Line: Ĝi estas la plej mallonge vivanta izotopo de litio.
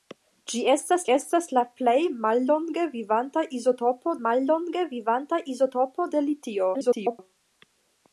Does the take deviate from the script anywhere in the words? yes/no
yes